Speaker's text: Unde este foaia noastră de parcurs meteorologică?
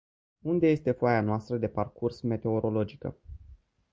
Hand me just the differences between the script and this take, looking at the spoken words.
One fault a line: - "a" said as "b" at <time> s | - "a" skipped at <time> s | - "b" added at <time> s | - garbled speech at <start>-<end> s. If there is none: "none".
none